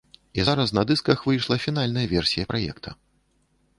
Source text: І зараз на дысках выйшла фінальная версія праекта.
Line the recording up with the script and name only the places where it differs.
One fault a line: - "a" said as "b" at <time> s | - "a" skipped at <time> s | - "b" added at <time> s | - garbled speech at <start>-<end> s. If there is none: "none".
none